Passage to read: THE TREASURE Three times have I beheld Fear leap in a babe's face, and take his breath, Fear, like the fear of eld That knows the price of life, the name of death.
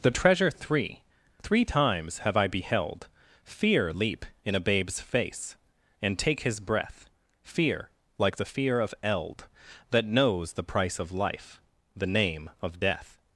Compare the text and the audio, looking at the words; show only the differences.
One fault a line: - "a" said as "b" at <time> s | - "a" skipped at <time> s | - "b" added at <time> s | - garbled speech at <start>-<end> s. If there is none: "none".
- "three" added at 1.4 s